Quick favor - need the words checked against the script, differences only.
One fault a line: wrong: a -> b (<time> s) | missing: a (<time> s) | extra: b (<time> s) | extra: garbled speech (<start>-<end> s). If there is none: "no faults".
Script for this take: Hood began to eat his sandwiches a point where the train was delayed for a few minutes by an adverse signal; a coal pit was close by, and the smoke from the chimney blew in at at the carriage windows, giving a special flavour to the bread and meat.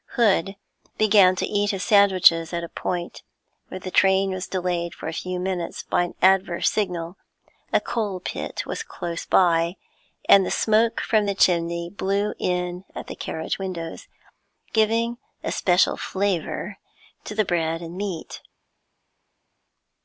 extra: at (2.5 s)
missing: at (13.1 s)